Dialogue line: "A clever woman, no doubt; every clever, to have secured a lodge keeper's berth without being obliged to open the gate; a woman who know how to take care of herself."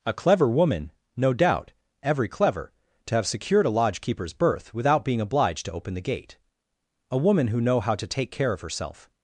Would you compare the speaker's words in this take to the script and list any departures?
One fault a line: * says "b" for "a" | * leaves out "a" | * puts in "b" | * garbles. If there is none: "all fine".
all fine